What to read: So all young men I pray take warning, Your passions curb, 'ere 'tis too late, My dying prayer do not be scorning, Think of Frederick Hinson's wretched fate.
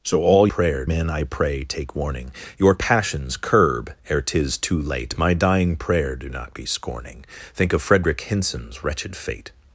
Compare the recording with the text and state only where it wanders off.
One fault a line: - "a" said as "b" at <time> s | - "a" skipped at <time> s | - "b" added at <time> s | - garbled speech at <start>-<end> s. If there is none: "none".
- "young" said as "prayer" at 0.5 s